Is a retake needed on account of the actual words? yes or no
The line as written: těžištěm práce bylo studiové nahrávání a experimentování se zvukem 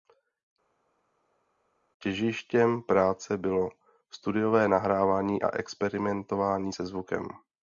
no